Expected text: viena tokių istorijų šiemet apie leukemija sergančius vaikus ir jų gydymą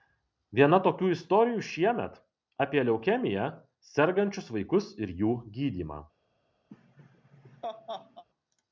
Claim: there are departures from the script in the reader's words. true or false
false